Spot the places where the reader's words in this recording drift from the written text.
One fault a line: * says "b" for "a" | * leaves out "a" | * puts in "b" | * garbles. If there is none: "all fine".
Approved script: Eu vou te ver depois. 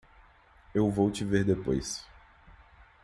all fine